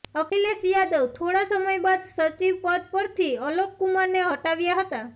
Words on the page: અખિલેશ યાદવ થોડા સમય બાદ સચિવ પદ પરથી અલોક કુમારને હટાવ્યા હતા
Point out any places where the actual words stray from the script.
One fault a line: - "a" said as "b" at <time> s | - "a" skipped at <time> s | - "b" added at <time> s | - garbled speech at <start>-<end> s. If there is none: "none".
none